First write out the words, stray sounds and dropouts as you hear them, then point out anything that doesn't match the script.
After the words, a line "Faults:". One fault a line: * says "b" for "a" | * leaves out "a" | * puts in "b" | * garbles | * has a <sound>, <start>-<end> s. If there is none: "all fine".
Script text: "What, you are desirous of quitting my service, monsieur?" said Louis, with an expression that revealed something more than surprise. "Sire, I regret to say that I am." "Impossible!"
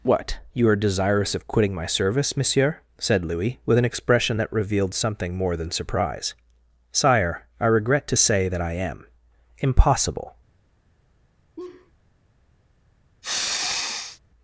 "What, you are desirous of quitting my service, monsieur?" said Louis, with an expression that revealed something more than surprise. "Sire, I regret to say that I am." "Impossible!"
Faults:
* has a laugh, 11.6-11.9 s
* has a sniff, 13.2-14.2 s